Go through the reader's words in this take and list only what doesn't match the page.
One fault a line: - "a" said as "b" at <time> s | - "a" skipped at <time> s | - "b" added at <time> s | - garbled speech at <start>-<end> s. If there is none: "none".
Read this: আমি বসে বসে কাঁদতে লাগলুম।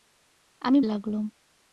- "বসে বসে কাঁদতে" skipped at 0.8 s